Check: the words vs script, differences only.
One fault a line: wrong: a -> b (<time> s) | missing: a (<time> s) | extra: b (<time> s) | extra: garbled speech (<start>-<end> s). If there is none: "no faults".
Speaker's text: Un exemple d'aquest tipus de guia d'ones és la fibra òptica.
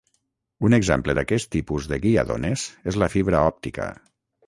no faults